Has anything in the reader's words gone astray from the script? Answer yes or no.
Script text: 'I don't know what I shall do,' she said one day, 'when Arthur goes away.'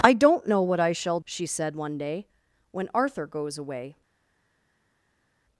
yes